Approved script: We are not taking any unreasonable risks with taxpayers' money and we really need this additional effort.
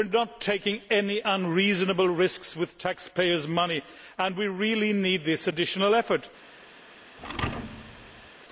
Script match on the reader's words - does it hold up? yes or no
yes